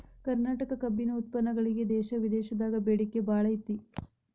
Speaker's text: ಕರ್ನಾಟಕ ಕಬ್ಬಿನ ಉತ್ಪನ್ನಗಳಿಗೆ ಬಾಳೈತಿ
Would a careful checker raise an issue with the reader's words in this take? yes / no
yes